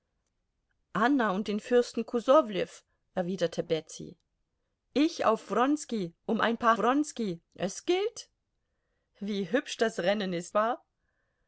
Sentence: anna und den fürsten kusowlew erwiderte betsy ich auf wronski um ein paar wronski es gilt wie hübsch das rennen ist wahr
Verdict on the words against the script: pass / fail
pass